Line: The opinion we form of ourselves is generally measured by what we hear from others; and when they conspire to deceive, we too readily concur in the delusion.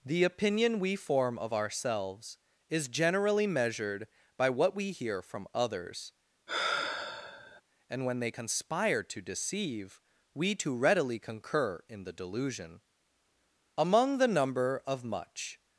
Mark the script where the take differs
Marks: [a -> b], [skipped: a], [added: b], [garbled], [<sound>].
The opinion we form of ourselves is generally measured by what we hear from others; [sigh] and when they conspire to deceive, we too readily concur in the delusion. [added: Among the number of much]